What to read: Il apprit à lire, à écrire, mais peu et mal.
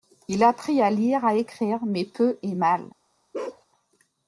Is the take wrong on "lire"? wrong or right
right